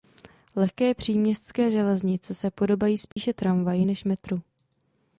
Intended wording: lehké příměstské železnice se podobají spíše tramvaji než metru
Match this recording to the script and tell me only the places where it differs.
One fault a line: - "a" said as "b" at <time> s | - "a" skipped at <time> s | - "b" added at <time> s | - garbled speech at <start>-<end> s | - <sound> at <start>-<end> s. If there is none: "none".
- dropout at 3.1-3.2 s